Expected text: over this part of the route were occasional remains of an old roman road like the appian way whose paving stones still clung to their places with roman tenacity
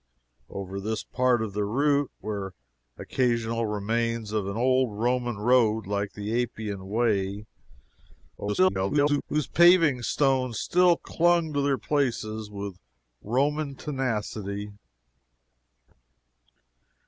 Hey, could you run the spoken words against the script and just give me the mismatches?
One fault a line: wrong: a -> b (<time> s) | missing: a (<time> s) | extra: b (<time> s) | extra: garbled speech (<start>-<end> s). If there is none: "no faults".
extra: garbled speech (8.4-9.2 s)